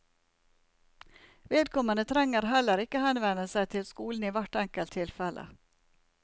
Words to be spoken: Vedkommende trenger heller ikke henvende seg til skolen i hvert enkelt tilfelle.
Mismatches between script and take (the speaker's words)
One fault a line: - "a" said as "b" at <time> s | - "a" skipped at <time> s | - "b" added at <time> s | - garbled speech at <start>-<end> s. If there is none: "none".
none